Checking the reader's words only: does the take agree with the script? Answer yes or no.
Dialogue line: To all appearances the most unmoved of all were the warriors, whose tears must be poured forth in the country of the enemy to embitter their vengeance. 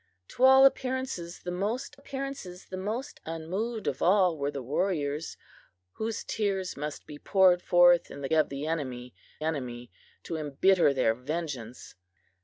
no